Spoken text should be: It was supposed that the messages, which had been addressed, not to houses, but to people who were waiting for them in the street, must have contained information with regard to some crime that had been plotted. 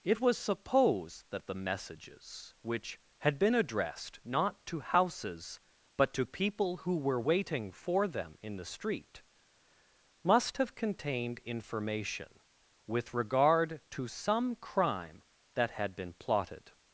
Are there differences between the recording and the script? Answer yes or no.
no